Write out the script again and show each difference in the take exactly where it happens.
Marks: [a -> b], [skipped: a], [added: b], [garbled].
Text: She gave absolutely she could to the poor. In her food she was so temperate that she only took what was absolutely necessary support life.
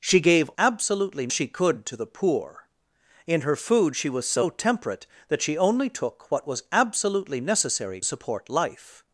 She gave absolutely she could to the poor. In her food she was so temperate that she only took what was absolutely necessary support life.